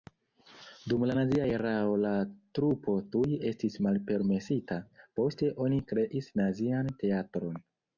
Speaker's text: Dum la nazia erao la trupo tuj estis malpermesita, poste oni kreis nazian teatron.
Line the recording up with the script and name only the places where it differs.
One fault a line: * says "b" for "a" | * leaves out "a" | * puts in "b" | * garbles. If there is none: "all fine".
all fine